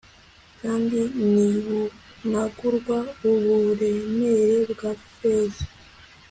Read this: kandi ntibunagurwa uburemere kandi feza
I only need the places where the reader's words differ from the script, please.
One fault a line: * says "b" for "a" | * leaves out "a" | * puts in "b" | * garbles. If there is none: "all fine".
* says "bwa" for "kandi"